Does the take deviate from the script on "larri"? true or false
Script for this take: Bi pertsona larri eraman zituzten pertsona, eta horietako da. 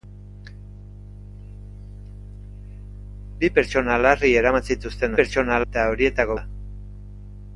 false